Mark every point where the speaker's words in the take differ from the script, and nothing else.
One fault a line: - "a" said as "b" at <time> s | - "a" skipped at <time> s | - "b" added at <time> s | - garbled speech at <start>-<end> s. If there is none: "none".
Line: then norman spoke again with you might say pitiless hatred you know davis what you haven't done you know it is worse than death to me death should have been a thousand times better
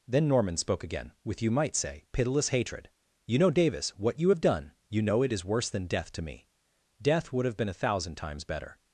- "haven't" said as "have" at 4.3 s
- "should" said as "would" at 7.3 s